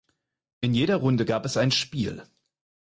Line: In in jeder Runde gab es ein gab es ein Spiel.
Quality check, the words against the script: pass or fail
fail